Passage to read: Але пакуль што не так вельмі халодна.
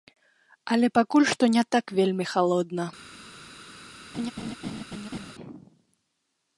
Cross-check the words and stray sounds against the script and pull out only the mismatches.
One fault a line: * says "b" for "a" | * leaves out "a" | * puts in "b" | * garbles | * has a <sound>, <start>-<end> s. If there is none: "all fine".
* has a laugh, 4.1-5.3 s